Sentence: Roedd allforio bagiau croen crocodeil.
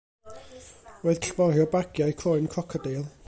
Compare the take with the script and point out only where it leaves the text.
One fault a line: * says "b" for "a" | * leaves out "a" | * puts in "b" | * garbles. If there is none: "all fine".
all fine